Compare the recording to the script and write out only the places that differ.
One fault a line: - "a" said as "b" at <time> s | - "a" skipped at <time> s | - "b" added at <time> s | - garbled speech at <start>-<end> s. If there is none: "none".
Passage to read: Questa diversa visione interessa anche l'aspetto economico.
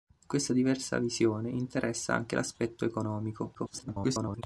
- garbled speech at 3.5-4.4 s